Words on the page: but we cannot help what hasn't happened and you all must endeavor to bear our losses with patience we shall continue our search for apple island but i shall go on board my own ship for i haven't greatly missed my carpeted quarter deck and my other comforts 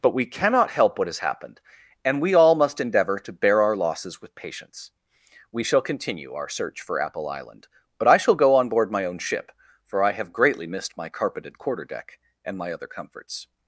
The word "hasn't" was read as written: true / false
false